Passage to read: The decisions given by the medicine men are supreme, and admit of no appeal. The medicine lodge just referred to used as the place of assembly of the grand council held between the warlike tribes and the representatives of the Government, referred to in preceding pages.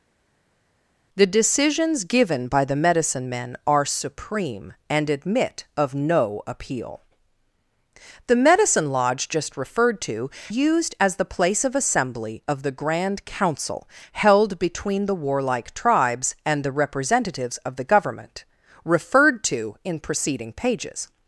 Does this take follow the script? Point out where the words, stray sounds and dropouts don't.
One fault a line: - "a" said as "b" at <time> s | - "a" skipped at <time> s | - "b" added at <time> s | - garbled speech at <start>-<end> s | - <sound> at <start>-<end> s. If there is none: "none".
none